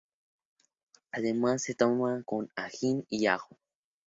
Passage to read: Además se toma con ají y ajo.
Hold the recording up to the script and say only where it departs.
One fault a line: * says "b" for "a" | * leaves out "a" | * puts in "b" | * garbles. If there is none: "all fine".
all fine